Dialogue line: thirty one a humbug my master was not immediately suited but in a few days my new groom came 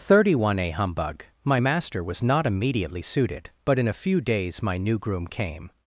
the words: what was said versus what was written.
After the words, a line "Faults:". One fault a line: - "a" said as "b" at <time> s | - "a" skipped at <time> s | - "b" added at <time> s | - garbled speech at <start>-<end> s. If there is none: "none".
thirty one a humbug my master was not immediately suited but in a few days my new groom came
Faults:
none